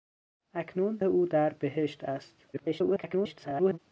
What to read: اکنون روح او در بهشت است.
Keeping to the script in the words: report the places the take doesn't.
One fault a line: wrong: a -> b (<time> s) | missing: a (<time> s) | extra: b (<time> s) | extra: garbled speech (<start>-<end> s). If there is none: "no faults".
missing: روح (1.0 s)
extra: garbled speech (2.5-3.8 s)